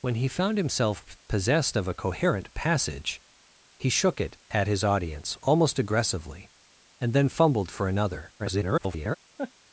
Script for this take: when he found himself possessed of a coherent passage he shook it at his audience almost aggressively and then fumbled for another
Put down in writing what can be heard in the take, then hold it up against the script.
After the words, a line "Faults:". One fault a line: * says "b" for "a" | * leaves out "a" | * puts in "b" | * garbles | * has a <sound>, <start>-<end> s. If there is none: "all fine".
when he found himself possessed of a coherent passage he shook it at his audience almost aggressively and then fumbled for another [garbled]
Faults:
* garbles
* has a laugh, 9.4-9.5 s